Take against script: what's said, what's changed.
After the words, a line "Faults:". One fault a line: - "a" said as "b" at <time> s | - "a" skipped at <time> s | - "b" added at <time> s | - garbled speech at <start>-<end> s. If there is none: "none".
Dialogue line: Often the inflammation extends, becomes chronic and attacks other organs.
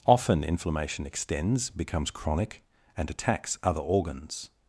Often inflammation extends, becomes chronic and attacks other organs.
Faults:
- "the" skipped at 0.5 s